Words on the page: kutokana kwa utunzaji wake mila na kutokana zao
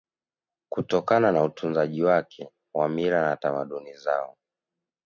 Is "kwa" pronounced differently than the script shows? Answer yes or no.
yes